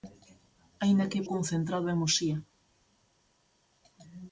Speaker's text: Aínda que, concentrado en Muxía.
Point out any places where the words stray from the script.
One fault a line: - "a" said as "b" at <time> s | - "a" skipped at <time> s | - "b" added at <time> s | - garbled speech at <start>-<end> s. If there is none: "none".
none